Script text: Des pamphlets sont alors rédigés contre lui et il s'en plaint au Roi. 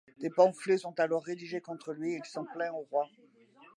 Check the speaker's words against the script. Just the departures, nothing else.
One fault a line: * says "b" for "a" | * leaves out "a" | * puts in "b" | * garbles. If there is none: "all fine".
all fine